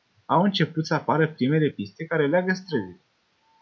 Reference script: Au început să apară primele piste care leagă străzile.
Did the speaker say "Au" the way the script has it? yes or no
yes